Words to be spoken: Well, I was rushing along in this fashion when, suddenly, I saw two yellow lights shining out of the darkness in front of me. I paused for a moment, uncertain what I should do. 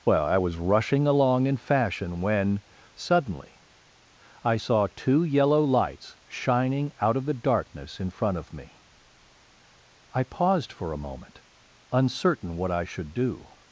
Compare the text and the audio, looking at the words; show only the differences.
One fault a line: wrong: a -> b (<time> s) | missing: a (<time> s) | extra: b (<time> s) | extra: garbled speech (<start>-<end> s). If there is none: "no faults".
missing: this (1.6 s)